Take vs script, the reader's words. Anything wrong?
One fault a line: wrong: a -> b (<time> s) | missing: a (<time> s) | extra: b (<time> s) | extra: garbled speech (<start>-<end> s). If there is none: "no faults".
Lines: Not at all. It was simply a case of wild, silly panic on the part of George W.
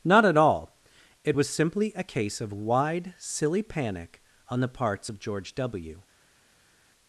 wrong: wild -> wide (2.5 s)
wrong: part -> parts (4.7 s)